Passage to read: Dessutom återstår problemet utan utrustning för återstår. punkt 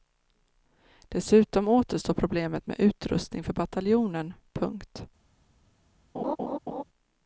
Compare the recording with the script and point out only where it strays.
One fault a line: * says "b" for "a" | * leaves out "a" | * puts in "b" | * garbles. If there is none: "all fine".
* says "med" for "utan"
* says "bataljonen" for "återstår"